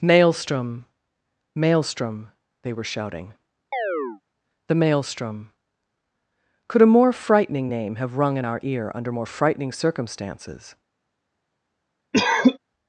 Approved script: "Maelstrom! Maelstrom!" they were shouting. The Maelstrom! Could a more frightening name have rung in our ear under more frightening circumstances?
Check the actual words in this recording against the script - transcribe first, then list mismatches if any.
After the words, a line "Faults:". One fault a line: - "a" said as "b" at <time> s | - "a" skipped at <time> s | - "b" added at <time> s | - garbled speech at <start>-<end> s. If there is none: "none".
"Maelstrom! Maelstrom!" they were shouting. The Maelstrom! Could a more frightening name have rung in our ear under more frightening circumstances?
Faults:
none